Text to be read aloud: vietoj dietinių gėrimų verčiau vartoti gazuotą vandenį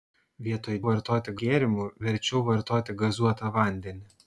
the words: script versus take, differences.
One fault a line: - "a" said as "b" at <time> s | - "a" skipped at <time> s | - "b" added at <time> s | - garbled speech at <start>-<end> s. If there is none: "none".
- "dietinių" said as "vartoti" at 0.9 s